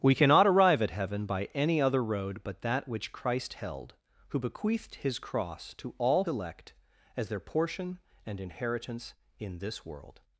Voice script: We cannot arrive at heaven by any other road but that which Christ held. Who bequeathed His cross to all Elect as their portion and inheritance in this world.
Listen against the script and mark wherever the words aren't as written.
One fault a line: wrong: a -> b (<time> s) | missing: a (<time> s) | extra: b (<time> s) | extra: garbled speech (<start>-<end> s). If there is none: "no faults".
no faults